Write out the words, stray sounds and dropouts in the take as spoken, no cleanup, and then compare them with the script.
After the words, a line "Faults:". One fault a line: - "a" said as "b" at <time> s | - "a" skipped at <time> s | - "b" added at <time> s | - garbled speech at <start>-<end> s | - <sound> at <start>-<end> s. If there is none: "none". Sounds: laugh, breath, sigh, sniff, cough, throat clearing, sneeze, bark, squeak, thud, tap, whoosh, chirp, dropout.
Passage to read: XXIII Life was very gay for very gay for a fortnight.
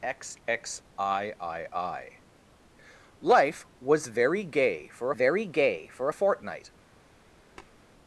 XXIII Life was very gay for very gay for a fortnight.
Faults:
- tap at 7.6-7.8 s